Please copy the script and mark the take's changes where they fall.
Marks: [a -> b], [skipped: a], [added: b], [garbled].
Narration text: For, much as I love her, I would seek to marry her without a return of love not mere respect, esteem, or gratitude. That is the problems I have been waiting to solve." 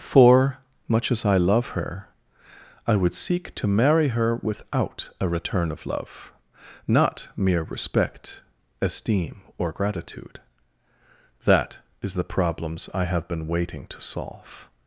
For, much as I love her, I would seek to marry her without a return of love not mere respect, esteem, or gratitude. That is the problems I have been waiting to solve."